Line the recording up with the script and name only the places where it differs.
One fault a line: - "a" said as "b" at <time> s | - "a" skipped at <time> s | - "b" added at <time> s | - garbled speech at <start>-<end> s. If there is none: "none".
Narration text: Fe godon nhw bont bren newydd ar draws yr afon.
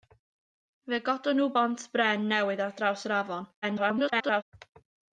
- garbled speech at 3.6-4.4 s